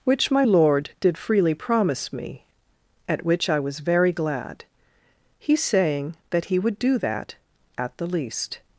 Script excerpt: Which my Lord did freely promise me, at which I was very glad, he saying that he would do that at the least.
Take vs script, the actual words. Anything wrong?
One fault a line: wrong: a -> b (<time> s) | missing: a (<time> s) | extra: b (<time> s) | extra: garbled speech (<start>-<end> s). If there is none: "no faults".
no faults